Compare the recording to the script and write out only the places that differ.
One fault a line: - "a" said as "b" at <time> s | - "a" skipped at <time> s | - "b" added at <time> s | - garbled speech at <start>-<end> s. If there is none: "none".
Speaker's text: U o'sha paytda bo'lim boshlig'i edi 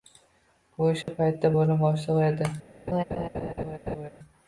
none